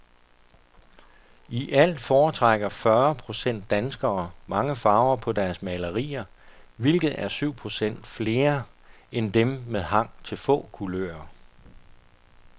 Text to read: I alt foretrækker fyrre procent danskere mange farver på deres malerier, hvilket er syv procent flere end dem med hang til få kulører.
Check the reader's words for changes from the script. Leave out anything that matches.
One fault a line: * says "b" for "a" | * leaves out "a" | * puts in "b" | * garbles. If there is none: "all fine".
all fine